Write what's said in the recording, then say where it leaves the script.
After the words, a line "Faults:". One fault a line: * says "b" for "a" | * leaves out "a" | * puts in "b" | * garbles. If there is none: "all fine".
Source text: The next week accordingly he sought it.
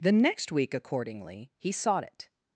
The next week accordingly he sought it.
Faults:
all fine